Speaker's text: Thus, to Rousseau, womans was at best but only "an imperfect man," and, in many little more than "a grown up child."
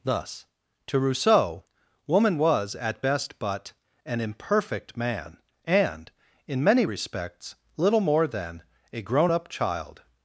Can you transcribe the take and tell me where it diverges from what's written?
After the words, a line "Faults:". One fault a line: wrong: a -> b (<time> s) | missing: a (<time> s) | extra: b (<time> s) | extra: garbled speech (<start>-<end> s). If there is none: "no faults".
Thus, to Rousseau, woman was at best but "an imperfect man," and, in many respects, little more than "a grown up child."
Faults:
wrong: womans -> woman (2.1 s)
missing: only (3.7 s)
extra: respects (6.8 s)